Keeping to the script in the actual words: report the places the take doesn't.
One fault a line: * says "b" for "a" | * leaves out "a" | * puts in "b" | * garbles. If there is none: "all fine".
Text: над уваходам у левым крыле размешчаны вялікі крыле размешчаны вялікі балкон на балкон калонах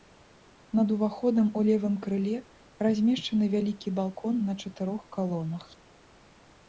* leaves out "крыле размешчаны вялікі"
* says "чатырох" for "балкон"